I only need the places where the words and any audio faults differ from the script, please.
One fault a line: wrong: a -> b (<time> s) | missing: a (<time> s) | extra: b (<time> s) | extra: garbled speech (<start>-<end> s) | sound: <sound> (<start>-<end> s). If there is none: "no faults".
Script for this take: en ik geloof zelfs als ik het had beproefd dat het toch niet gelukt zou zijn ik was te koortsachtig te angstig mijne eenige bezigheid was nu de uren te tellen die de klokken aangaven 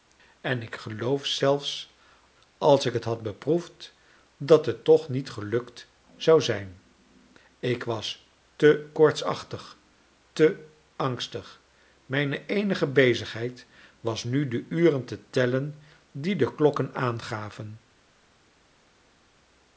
no faults